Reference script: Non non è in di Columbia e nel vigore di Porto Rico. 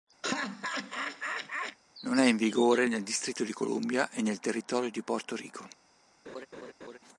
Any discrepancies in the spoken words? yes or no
yes